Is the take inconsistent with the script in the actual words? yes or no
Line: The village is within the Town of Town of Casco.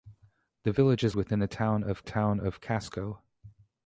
no